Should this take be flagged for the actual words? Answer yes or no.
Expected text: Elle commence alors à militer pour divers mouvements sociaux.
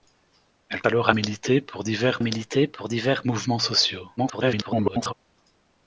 yes